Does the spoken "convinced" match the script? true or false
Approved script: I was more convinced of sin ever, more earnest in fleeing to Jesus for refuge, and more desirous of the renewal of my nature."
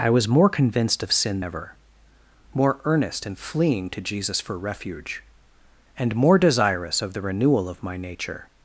true